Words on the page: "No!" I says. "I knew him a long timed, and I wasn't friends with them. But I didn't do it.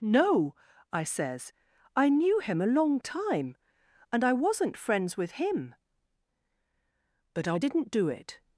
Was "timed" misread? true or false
true